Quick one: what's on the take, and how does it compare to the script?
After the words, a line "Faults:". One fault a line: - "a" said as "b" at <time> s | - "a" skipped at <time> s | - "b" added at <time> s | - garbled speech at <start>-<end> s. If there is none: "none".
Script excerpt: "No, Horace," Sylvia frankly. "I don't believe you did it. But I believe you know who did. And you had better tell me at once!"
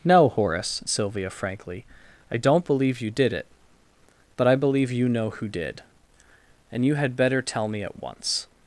"No, Horace," Sylvia frankly. "I don't believe you did it. But I believe you know who did. And you had better tell me at once!"
Faults:
none